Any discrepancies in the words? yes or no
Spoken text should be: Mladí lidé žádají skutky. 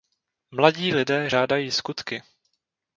no